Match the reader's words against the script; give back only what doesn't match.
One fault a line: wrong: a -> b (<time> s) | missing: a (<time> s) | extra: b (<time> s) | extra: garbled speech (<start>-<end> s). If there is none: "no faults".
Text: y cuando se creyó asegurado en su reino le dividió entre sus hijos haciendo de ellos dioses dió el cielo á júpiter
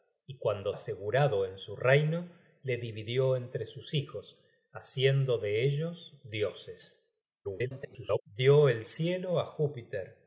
missing: se creyó (0.7 s)
extra: garbled speech (7.4-8.2 s)